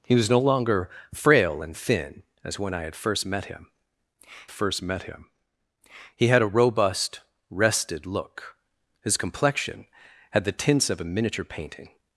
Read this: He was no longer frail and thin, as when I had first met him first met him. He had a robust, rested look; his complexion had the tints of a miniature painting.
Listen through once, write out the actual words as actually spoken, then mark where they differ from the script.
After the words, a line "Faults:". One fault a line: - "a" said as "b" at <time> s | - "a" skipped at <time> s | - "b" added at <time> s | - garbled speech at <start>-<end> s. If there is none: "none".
He was no longer frail and thin, as when I had first met him first met him. He had a robust, rested look; his complexion had the tints of a miniature painting.
Faults:
none